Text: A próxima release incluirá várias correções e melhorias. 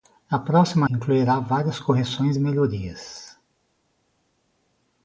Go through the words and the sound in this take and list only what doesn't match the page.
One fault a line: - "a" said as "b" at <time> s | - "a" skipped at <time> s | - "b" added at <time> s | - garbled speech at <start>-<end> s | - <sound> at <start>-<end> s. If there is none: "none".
- "release" skipped at 0.9 s